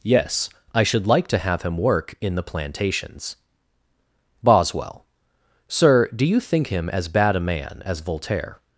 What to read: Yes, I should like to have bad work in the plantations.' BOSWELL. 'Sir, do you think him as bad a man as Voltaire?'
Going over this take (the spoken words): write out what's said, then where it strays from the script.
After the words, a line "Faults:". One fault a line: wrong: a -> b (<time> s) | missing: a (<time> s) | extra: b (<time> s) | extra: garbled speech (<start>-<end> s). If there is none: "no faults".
Yes, I should like to have him work in the plantations.' BOSWELL. 'Sir, do you think him as bad a man as Voltaire?'
Faults:
wrong: bad -> him (1.6 s)